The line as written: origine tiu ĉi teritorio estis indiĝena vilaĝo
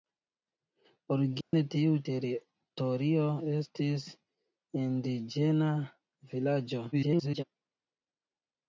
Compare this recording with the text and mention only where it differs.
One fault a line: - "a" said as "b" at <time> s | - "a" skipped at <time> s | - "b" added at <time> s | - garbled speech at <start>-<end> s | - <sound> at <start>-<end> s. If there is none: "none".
- dropout at 1.4-1.5 s
- "ĉi" skipped at 2.0 s
- garbled speech at 6.9-7.4 s